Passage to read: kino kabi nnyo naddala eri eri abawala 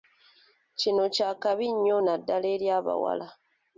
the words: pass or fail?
fail